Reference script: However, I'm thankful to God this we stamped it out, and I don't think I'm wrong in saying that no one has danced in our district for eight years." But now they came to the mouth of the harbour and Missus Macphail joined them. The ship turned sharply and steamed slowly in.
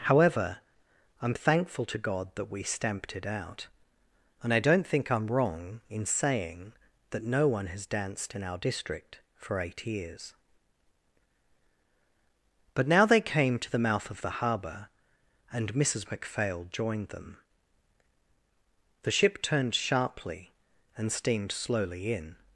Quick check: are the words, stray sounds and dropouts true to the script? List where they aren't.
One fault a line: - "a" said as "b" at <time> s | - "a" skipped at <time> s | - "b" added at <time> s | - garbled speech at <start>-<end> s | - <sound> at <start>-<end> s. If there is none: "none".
- "this" said as "that" at 2.3 s